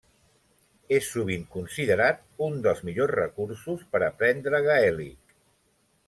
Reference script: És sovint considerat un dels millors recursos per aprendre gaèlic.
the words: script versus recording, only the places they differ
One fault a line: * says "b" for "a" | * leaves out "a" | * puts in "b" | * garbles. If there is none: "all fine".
all fine